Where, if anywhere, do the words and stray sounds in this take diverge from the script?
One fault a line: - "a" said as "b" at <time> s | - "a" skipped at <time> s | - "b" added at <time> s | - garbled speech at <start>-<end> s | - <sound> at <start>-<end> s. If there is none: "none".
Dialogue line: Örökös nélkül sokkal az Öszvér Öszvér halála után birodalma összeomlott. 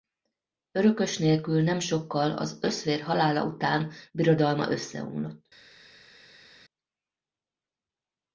- "nem" added at 1.6 s
- "Öszvér" skipped at 3.0 s